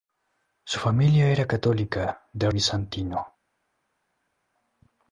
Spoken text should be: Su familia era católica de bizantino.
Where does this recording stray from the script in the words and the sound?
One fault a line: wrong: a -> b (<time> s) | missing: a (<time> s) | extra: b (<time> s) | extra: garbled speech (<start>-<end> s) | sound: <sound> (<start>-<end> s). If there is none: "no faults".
no faults